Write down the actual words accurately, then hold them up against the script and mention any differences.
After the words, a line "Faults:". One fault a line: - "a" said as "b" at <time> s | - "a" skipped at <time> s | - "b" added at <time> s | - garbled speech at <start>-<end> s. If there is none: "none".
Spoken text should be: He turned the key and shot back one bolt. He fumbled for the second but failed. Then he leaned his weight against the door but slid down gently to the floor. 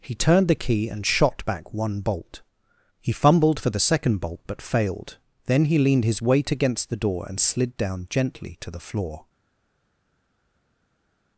He turned the key and shot back one bolt. He fumbled for the second bolt, but failed. Then he leaned his weight against the door and slid down gently to the floor.
Faults:
- "bolt" added at 4.2 s
- "but" said as "and" at 7.3 s